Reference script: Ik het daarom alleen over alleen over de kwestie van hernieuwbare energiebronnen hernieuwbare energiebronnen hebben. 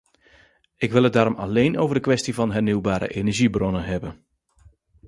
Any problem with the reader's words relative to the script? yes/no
yes